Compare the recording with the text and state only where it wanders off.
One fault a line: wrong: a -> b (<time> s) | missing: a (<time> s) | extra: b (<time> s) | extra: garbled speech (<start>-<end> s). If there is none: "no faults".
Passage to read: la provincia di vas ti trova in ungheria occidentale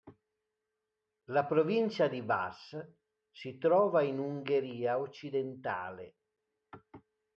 wrong: ti -> si (3.3 s)